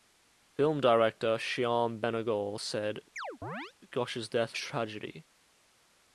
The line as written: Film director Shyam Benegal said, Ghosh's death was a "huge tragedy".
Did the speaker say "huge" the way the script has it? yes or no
no